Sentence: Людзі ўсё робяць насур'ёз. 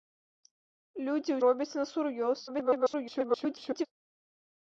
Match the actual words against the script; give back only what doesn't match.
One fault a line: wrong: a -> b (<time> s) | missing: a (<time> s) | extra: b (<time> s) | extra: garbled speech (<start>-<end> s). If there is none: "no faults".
missing: ўсё (1.4 s)
extra: garbled speech (2.5-3.9 s)